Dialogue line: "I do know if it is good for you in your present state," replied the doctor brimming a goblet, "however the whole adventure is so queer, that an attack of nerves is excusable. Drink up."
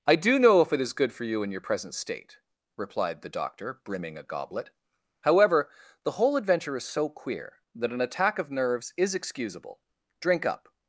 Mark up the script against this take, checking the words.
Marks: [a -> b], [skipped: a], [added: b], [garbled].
"I do know if it is good for you in your present state," replied the doctor brimming a goblet, "however the whole adventure is so queer, that an attack of nerves is excusable. Drink up."